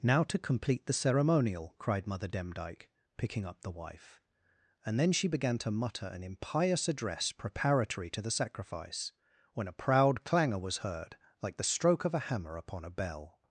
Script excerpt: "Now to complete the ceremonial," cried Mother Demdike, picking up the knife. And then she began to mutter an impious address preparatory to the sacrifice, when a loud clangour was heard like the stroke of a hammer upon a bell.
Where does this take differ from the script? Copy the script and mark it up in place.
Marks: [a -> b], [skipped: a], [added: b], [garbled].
"Now to complete the ceremonial," cried Mother Demdike, picking up the [knife. -> wife] And then she began to mutter an impious address preparatory to the sacrifice, when a [loud -> proud] clangour was heard like the stroke of a hammer upon a bell.